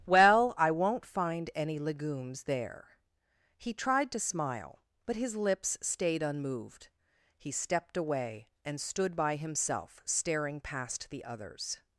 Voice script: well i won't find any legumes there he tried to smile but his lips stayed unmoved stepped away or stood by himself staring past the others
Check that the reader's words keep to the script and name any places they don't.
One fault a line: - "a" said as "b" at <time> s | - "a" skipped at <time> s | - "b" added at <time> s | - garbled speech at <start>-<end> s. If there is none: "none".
- "he" added at 7.4 s
- "or" said as "and" at 8.6 s